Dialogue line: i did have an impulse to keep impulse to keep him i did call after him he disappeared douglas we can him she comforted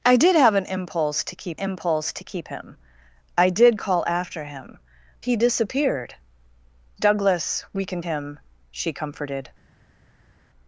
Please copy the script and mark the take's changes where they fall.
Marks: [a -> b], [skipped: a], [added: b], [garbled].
i did have an impulse to keep impulse to keep him i did call after him he disappeared douglas we can him she comforted